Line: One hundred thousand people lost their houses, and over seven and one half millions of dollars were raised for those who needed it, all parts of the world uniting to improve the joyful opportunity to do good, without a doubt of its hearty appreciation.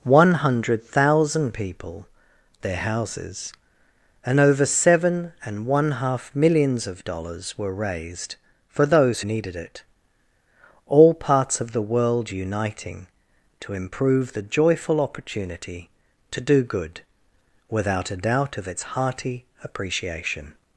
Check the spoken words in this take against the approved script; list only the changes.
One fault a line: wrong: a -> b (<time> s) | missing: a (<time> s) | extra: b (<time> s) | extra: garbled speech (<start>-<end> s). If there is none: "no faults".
missing: lost (2.1 s)
missing: who (9.2 s)